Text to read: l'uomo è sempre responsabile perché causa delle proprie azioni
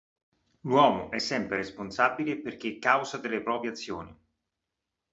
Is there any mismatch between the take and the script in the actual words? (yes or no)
no